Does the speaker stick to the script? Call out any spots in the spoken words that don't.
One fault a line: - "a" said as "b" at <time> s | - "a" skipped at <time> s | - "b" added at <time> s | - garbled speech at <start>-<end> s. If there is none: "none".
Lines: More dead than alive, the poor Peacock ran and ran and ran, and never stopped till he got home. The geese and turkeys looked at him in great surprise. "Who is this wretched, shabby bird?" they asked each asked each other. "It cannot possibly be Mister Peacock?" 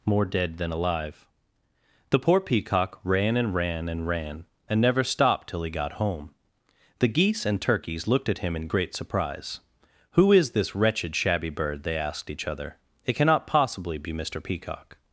- "asked each" skipped at 12.5 s